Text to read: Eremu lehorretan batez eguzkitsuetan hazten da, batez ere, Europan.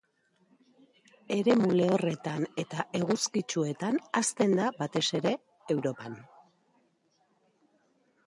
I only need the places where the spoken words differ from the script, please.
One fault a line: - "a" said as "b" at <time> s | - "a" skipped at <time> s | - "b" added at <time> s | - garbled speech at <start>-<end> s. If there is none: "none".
- "batez" said as "eta" at 2.6 s